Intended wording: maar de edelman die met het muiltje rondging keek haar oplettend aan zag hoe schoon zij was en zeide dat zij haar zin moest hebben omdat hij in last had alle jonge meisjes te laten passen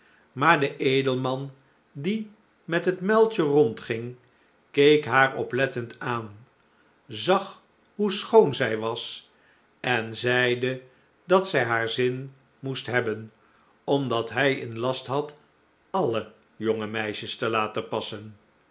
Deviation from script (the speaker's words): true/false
false